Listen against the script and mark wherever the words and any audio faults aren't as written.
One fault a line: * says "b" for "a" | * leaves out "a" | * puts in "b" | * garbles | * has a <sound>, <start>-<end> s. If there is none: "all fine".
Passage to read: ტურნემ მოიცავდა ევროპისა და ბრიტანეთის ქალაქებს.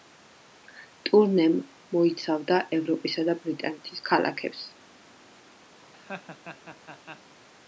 * has a laugh, 5.8-7.3 s